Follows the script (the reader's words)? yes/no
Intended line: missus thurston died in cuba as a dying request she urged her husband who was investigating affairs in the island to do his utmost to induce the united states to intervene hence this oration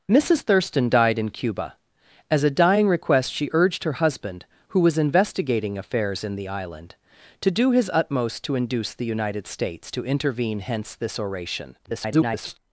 no